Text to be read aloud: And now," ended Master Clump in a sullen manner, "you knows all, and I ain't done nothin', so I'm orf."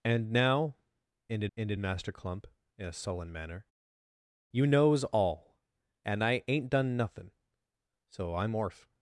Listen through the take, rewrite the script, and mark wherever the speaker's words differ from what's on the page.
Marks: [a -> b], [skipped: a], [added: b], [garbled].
And now," ended [added: ended] Master Clump in a sullen manner, "you knows all, and I ain't done nothin', so I'm orf."